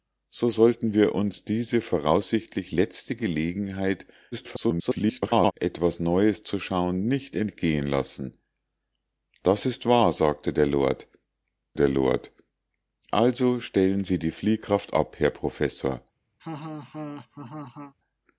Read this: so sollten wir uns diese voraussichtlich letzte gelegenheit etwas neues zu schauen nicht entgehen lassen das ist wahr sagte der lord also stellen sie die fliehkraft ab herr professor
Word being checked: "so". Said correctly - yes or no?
yes